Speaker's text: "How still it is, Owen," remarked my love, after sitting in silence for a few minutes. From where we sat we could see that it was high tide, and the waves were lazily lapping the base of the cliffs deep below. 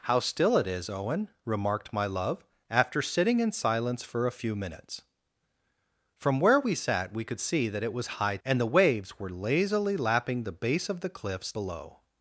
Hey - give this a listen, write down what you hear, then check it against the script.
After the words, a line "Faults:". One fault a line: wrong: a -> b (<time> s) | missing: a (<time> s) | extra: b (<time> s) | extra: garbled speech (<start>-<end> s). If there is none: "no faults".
"How still it is, Owen," remarked my love, after sitting in silence for a few minutes. From where we sat we could see that it was high and the waves were lazily lapping the base of the cliffs below.
Faults:
missing: tide (8.4 s)
missing: deep (11.5 s)